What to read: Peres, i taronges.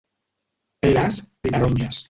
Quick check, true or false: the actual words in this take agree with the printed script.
true